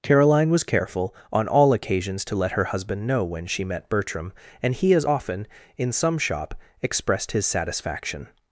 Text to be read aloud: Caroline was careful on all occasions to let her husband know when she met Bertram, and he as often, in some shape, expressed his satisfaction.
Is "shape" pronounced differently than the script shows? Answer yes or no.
yes